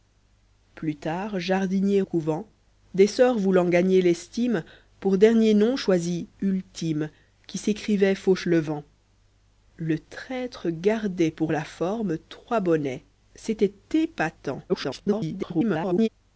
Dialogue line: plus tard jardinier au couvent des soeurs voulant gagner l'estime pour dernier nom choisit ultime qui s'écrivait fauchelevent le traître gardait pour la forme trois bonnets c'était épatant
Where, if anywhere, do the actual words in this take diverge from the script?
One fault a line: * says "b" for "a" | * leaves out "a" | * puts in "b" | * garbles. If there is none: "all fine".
* leaves out "au"
* garbles